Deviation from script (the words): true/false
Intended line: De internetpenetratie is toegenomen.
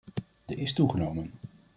true